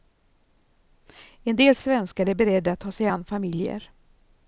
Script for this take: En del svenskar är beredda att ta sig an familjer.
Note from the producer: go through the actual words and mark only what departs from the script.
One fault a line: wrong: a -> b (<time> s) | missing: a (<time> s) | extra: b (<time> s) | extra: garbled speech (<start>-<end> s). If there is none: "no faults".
no faults